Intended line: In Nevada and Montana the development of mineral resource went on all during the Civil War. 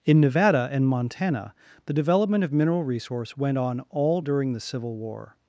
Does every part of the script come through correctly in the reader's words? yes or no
yes